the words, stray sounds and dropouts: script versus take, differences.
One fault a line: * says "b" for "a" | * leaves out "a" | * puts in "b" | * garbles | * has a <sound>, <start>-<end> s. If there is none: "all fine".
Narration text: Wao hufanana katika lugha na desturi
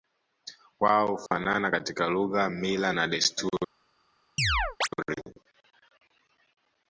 * has a dropout, 1.3-1.3 s
* puts in "mila"
* has a chirp, 4.4-4.9 s